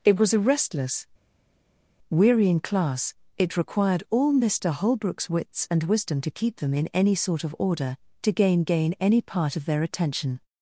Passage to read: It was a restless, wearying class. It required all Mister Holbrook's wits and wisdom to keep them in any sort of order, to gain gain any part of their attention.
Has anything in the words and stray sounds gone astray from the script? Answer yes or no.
no